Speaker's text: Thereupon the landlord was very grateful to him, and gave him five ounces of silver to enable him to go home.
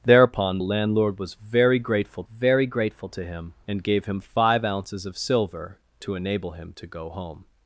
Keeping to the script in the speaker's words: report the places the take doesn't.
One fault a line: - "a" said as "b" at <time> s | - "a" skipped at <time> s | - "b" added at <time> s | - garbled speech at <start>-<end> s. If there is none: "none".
- "the" skipped at 0.6 s
- "very grateful" added at 2.2 s